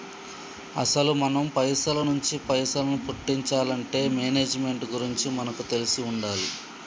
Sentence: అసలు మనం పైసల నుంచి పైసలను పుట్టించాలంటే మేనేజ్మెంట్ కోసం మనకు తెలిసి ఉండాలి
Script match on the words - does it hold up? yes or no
no